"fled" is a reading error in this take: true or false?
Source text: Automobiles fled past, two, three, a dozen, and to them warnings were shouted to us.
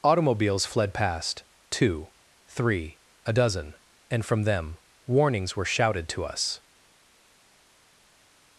false